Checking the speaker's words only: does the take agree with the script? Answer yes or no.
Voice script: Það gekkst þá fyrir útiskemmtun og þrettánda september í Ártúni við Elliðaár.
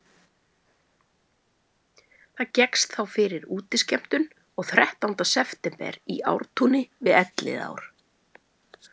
yes